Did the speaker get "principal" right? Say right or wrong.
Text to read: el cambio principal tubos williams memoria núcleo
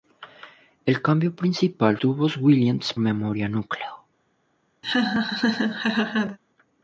right